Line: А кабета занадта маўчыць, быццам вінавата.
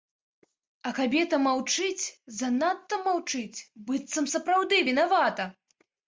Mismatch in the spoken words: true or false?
true